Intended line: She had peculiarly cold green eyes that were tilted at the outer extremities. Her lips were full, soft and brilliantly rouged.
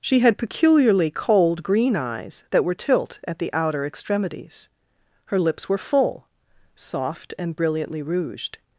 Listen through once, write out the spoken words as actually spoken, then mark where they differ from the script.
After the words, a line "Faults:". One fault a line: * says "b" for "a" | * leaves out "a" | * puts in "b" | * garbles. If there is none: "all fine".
She had peculiarly cold green eyes that were tilt at the outer extremities. Her lips were full, soft and brilliantly rouged.
Faults:
* says "tilt" for "tilted"